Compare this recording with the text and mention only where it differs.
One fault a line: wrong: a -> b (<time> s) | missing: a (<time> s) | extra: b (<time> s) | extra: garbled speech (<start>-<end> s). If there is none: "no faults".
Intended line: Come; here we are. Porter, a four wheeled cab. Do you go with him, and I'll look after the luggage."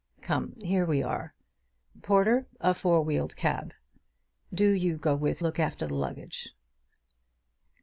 missing: him and I'll (5.4 s)